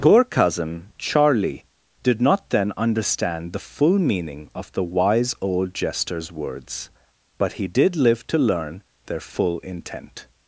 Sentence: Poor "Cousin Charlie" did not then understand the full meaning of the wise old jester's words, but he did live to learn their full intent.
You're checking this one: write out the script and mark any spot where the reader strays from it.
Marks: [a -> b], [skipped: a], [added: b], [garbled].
Poor "Cousin Charlie" did not then understand the full meaning of the wise old jester's words, but he did live to learn their full intent.